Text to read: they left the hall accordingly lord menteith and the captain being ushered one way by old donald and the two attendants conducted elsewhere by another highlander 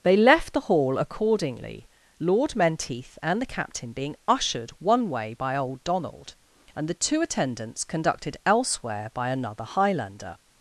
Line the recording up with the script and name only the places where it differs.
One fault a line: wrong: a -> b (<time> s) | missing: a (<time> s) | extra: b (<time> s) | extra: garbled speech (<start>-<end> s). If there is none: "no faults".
no faults